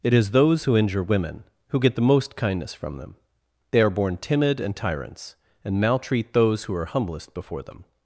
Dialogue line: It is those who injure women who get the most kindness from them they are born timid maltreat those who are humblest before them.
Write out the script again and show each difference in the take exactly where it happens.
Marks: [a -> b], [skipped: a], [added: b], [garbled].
It is those who injure women who get the most kindness from them they are born timid [added: and tyrants and] maltreat those who are humblest before them.